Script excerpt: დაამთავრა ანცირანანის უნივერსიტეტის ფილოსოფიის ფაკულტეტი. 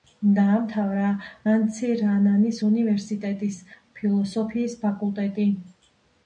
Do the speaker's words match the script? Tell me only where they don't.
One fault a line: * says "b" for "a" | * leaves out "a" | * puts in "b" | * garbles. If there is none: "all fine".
all fine